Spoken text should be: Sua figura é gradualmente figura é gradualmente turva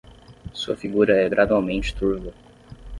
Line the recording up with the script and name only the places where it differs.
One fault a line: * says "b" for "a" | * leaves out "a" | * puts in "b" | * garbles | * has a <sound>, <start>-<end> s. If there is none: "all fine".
* leaves out "figura é gradualmente"